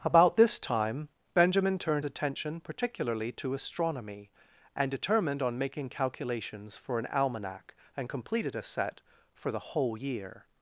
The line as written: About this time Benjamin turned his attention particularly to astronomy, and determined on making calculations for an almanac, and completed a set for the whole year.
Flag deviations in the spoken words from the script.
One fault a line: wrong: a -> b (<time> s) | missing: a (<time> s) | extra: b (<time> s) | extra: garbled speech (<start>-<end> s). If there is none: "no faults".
missing: his (2.0 s)